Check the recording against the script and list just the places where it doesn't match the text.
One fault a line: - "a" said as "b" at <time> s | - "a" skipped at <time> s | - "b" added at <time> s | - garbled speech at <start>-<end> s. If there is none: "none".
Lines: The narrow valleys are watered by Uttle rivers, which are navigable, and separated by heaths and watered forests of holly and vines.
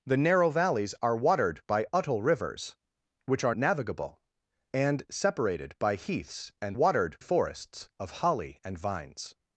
none